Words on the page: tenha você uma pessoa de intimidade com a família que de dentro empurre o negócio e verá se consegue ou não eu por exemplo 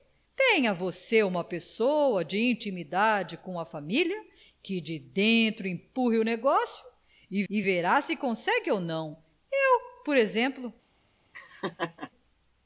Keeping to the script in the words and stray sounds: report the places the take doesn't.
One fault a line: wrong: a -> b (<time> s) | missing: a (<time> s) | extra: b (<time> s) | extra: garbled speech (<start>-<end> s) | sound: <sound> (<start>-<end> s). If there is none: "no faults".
extra: e (7.5 s)
sound: laugh (11.3-12.1 s)